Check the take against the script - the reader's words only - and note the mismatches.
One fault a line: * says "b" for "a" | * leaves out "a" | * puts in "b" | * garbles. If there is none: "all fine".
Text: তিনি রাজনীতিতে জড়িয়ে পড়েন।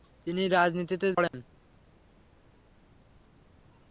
* leaves out "জড়িয়ে"